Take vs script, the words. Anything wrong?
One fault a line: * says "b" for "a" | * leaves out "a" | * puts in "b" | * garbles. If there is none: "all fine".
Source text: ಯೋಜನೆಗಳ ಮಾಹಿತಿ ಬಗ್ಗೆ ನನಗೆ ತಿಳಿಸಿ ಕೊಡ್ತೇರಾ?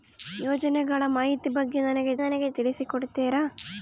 * puts in "ನನಗೆ"